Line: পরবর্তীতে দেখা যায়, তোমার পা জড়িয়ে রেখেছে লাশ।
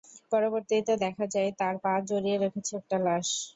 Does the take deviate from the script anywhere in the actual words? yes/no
yes